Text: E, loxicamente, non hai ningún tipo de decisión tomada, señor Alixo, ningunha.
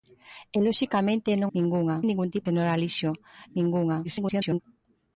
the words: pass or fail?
fail